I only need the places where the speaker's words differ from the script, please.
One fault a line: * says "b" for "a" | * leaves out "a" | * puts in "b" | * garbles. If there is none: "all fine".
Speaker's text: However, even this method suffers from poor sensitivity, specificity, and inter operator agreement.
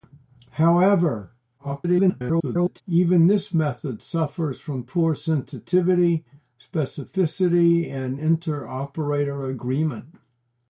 * garbles